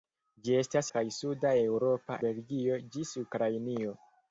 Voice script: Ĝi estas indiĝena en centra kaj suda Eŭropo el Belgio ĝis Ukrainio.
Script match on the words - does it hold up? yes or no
no